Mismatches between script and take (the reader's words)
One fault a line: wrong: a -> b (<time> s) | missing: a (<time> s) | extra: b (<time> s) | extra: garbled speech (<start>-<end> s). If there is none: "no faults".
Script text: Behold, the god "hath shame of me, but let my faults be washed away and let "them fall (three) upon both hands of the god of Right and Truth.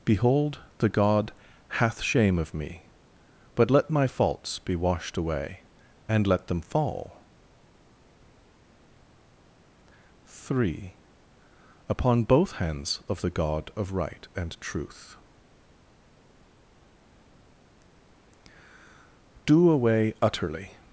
extra: Do away utterly (19.4 s)